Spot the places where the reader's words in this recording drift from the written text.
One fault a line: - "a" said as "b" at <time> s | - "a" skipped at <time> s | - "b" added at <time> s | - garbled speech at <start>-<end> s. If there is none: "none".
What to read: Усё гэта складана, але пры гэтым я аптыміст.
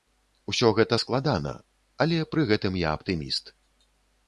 none